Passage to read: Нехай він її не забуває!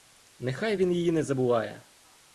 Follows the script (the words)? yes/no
yes